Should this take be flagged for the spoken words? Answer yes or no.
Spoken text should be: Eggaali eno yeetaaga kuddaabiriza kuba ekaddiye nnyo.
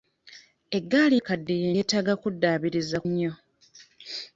yes